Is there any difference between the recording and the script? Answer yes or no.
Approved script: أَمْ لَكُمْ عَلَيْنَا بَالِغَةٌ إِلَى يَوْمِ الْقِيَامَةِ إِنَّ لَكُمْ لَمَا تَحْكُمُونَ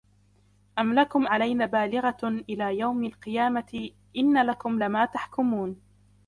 no